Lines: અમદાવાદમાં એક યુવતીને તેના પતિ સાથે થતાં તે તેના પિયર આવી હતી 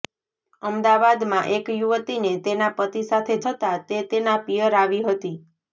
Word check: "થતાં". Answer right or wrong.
right